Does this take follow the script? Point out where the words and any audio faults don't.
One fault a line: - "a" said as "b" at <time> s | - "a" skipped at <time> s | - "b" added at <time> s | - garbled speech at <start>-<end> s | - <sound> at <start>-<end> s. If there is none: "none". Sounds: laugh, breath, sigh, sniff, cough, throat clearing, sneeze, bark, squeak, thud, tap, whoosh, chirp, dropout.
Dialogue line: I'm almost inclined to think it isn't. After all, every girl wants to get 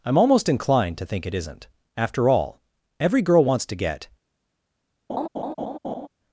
- laugh at 5.1-6.1 s